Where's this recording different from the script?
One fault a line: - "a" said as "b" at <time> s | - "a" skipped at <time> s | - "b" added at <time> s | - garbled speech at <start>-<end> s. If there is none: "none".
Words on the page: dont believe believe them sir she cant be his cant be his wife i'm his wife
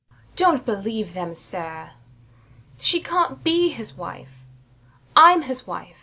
- "believe" skipped at 1.1 s
- "cant be his" skipped at 4.0 s